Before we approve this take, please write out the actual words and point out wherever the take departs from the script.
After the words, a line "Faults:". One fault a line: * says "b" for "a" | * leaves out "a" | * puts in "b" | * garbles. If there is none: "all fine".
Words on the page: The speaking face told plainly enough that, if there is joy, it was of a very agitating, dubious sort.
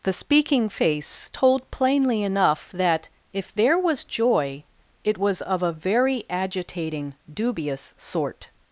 The speaking face told plainly enough that, if there was joy, it was of a very agitating, dubious sort.
Faults:
* says "was" for "is"